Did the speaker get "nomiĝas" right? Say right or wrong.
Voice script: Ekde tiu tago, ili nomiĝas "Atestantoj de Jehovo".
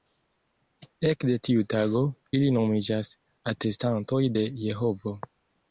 right